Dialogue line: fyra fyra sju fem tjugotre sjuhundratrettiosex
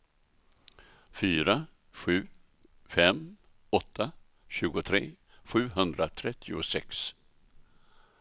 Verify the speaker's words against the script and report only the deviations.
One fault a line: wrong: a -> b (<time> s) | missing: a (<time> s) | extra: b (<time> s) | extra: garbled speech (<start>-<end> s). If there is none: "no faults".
missing: fyra (1.6 s)
extra: åtta (3.8 s)